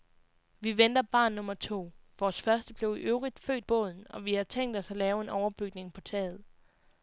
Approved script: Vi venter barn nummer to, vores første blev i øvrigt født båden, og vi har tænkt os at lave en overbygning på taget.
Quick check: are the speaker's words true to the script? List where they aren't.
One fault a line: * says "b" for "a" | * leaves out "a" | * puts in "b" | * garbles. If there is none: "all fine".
all fine